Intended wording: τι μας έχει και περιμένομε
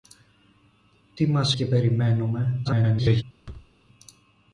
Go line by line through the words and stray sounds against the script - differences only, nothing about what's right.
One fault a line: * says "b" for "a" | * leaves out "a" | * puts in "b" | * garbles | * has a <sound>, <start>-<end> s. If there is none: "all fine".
* leaves out "έχει"
* garbles
* has a thud, 3.4-3.7 s